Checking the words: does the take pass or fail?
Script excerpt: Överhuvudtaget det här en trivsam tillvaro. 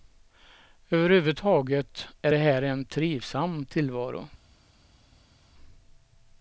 fail